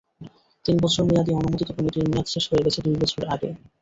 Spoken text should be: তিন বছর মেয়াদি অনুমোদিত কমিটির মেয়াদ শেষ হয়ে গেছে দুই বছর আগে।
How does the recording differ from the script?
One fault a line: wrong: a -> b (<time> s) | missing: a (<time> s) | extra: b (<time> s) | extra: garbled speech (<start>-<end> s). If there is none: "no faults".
no faults